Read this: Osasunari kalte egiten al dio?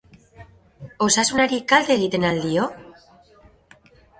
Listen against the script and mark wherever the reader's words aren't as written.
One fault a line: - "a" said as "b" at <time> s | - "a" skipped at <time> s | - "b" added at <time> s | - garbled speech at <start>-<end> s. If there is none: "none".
none